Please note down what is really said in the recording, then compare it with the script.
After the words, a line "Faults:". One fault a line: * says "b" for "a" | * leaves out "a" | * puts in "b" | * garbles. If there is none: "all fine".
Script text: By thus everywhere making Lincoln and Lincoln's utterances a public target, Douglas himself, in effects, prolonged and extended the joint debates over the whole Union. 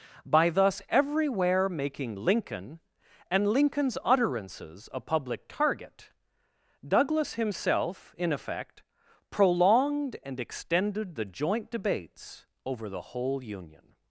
By thus everywhere making Lincoln and Lincoln's utterances a public target, Douglas himself, in effect, prolonged and extended the joint debates over the whole Union.
Faults:
* says "effect" for "effects"